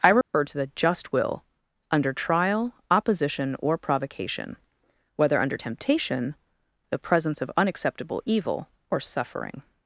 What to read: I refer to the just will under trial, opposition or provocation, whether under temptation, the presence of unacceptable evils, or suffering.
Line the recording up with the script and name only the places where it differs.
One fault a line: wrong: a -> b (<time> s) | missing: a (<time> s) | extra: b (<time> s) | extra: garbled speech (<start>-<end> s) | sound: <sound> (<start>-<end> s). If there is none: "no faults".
sound: dropout (0.2-0.3 s)
wrong: evils -> evil (8.2 s)